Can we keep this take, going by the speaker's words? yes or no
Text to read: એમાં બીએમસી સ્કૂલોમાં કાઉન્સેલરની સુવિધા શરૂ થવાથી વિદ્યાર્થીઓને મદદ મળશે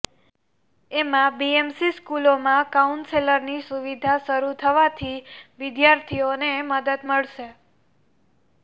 yes